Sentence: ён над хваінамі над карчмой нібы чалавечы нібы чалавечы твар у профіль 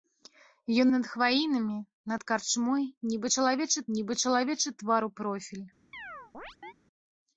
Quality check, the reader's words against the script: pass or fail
pass